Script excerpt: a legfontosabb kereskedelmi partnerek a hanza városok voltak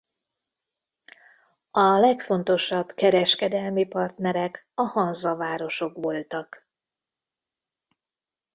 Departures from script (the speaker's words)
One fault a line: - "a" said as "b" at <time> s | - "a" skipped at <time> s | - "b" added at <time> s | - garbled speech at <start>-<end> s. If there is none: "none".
none